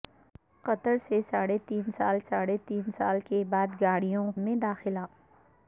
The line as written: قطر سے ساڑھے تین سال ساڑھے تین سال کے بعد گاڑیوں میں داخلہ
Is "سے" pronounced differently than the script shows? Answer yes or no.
no